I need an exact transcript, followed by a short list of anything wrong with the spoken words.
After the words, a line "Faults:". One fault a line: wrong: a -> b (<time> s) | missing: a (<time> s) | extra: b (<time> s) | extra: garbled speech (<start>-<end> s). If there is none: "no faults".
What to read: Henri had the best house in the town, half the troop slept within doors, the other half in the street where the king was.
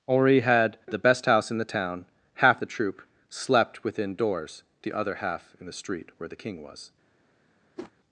Henri had the best house in the town, half the troop slept within doors, the other half in the street where the king was.
Faults:
no faults